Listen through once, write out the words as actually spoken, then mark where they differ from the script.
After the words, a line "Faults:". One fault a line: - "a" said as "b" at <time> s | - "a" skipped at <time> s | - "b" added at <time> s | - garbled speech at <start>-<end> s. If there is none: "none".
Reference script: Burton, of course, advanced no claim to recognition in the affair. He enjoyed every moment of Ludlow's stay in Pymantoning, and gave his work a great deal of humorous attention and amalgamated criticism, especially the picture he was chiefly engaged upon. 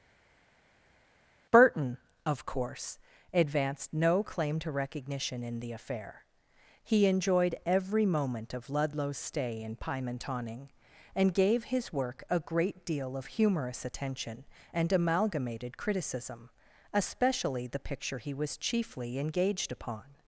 Burton, of course, advanced no claim to recognition in the affair. He enjoyed every moment of Ludlow's stay in Pymantoning, and gave his work a great deal of humorous attention and amalgamated criticism, especially the picture he was chiefly engaged upon.
Faults:
none